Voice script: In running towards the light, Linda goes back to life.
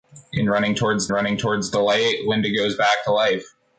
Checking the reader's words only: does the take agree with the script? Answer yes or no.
no